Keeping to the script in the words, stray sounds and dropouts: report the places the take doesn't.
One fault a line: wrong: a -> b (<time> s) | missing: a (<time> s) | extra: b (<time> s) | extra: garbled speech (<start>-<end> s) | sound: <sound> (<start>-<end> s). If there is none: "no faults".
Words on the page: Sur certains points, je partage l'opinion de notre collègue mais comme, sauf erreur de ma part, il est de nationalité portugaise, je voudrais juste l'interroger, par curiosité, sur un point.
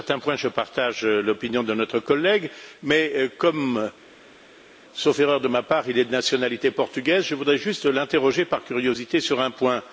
no faults